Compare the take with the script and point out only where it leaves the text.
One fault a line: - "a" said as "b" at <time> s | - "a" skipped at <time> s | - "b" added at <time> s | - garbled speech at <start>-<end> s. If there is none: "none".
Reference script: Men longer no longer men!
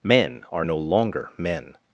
- "longer" said as "are" at 0.5 s